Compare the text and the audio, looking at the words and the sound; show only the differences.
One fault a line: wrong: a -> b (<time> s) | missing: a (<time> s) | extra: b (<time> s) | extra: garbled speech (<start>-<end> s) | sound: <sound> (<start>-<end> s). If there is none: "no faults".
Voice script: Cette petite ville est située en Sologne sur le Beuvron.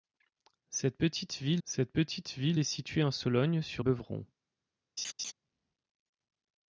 extra: cette petite ville (1.7 s)
missing: le (3.8 s)
sound: laugh (5.0-5.3 s)